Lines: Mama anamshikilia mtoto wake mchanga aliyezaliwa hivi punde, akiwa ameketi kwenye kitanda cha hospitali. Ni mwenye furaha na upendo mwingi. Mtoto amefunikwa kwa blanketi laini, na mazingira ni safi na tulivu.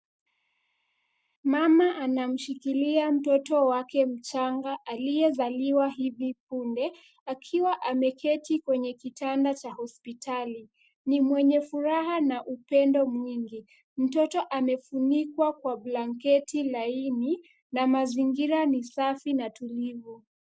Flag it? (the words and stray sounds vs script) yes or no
no